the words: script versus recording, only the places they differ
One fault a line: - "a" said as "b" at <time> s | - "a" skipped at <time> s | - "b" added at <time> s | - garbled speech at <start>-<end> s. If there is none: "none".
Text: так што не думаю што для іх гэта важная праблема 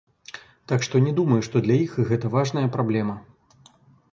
none